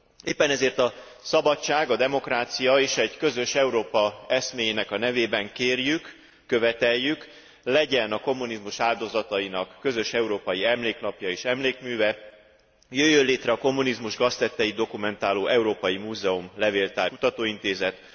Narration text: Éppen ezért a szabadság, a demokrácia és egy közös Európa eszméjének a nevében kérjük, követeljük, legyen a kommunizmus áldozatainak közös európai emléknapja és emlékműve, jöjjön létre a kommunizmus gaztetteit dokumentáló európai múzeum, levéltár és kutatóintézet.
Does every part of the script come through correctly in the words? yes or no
no